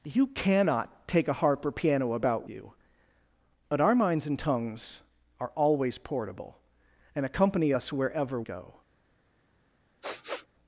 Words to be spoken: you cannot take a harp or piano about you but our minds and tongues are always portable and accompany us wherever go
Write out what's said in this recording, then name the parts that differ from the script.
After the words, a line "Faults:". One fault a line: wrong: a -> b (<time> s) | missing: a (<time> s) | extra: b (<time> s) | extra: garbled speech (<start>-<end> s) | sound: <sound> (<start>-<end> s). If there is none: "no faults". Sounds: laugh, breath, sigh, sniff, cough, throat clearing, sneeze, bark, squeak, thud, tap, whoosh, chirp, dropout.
you cannot take a harp or piano about you but our minds and tongues are always portable and accompany us wherever go
Faults:
sound: sniff (10.0-10.5 s)